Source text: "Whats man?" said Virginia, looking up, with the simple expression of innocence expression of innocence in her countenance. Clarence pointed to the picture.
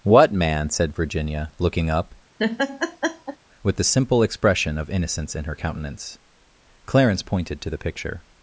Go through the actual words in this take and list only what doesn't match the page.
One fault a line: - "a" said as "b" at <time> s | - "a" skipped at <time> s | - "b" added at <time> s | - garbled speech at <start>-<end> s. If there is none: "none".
- "Whats" said as "What" at 0.0 s
- "expression of innocence" skipped at 5.4 s